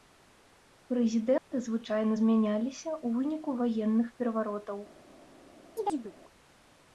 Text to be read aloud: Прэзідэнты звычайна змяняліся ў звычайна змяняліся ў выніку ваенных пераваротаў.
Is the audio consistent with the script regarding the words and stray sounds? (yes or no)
no